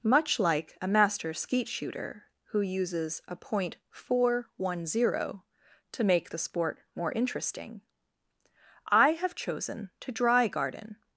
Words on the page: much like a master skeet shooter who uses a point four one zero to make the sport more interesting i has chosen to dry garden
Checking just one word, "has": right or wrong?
wrong